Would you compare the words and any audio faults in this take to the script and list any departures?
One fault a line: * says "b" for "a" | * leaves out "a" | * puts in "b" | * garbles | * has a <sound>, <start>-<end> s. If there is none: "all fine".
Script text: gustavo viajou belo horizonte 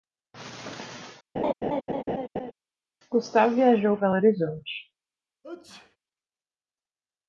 * has a laugh, 1.4-2.5 s
* has a sneeze, 5.4-6.0 s